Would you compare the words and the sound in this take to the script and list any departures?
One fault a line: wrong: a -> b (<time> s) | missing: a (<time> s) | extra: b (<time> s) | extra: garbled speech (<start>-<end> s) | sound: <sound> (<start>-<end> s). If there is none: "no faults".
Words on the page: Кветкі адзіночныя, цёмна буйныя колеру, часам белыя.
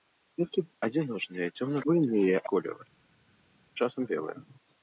no faults